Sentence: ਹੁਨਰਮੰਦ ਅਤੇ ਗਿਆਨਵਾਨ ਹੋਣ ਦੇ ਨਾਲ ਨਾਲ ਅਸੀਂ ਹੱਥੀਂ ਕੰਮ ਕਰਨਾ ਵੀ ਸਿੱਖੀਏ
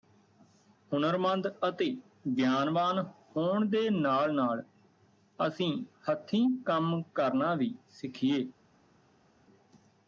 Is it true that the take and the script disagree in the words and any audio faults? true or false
false